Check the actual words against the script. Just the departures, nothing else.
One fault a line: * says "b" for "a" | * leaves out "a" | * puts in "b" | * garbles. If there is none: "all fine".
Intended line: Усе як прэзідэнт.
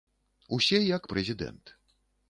all fine